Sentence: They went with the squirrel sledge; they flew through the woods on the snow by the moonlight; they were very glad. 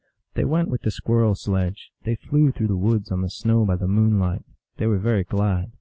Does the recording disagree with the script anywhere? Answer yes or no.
no